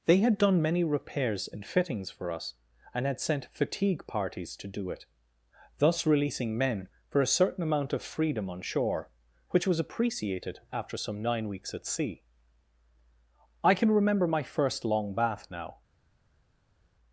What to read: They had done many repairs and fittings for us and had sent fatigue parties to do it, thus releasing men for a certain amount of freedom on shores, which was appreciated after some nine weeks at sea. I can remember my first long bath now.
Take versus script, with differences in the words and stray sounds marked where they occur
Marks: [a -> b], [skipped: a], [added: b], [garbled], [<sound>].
They had done many repairs and fittings for us and had sent fatigue parties to do it, thus releasing men for a certain amount of freedom on [shores, -> shore] which was appreciated after some nine weeks at sea. I can remember my first long bath now.